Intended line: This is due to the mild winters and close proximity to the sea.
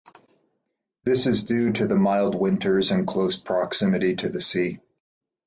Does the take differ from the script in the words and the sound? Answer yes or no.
no